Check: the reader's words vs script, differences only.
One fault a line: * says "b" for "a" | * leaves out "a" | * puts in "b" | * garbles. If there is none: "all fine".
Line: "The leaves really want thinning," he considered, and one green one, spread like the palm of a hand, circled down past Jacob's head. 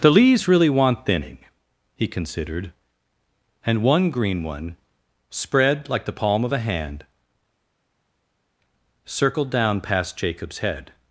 all fine